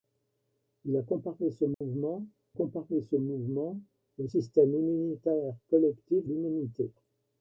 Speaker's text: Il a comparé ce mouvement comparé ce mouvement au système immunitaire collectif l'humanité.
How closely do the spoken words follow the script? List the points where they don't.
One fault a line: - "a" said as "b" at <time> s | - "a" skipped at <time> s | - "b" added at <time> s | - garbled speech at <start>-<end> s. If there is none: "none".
none